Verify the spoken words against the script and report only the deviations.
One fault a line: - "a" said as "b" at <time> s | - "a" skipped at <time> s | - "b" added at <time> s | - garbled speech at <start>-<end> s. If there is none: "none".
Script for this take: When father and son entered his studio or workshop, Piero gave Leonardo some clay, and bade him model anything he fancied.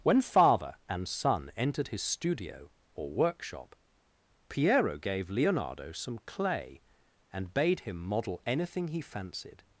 none